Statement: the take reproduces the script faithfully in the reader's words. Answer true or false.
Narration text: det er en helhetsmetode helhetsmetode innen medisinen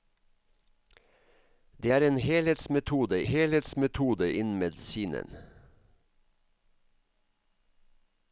true